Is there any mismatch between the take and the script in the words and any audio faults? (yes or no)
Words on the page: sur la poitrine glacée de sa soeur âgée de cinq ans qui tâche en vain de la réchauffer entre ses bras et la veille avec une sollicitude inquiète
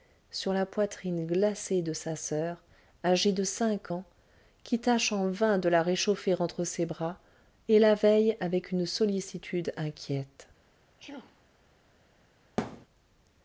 yes